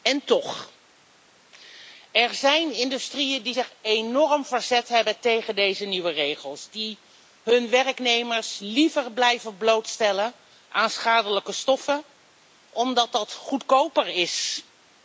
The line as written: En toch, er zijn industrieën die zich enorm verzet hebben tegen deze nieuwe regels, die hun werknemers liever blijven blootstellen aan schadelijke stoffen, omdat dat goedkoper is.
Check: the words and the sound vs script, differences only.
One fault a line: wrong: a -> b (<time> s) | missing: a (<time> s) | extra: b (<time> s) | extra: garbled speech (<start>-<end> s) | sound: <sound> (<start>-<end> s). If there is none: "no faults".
no faults